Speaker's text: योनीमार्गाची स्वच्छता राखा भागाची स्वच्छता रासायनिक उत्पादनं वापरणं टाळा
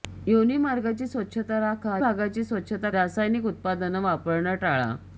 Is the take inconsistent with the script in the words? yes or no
no